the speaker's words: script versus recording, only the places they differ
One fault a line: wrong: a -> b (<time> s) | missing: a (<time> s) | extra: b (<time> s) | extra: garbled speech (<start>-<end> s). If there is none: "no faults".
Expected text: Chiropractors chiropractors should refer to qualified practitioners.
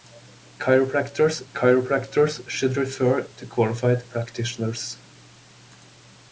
no faults